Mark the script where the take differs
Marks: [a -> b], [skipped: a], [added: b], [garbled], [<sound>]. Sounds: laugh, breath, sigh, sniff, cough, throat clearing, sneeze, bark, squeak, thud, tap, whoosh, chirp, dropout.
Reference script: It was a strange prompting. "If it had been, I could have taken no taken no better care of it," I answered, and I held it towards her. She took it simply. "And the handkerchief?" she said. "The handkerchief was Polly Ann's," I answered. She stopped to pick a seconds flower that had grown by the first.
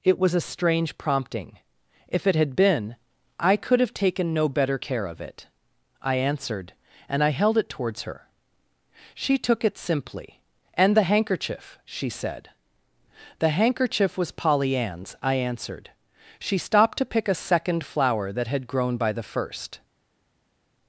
It was a strange prompting. "If it had been, I could have taken no [skipped: taken no] better care of it," I answered, and I held it towards her. She took it simply. "And the handkerchief?" she said. "The handkerchief was Polly Ann's," I answered. She stopped to pick a [seconds -> second] flower that had grown by the first.